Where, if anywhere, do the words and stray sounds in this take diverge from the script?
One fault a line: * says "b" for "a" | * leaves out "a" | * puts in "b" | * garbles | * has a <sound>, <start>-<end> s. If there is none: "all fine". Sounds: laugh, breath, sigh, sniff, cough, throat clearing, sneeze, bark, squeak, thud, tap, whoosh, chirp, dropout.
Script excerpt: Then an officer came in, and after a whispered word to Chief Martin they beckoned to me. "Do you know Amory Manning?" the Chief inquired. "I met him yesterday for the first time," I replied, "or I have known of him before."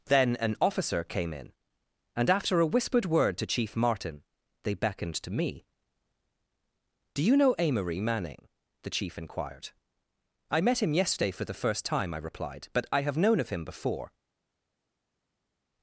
* says "but" for "or"